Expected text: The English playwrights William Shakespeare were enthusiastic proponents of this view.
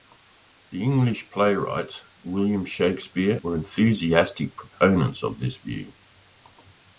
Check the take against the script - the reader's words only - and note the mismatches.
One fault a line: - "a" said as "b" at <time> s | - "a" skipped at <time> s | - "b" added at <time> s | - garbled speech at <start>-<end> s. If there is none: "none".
none